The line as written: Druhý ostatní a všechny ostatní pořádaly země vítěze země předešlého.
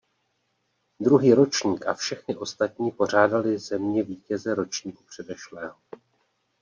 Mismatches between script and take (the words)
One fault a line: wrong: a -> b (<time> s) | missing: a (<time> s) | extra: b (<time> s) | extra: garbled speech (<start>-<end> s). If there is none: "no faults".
wrong: ostatní -> ročník (1.3 s)
wrong: země -> ročníku (4.5 s)